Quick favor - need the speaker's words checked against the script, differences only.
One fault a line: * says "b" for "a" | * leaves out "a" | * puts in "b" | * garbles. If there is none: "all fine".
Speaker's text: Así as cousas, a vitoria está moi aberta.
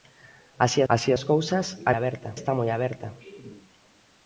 * puts in "así"
* says "aberta" for "vitoria"